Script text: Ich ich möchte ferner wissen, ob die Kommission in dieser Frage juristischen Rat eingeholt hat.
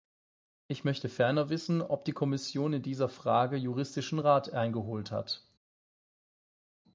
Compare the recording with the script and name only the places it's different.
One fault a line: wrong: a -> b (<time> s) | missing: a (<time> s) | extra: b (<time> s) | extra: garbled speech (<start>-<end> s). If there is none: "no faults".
missing: ich (0.8 s)